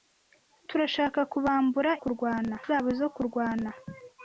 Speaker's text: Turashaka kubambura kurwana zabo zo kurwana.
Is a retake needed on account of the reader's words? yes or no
no